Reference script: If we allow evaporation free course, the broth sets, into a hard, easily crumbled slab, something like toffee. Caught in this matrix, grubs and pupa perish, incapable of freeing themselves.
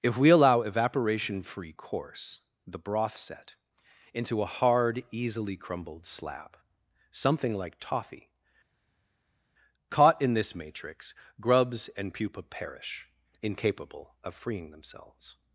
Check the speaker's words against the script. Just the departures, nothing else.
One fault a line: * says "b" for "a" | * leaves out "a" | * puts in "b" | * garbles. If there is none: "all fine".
* says "set" for "sets"